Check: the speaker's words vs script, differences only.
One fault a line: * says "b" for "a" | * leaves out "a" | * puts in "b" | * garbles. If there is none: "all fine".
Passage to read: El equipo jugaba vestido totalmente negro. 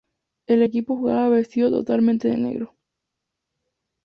* puts in "de"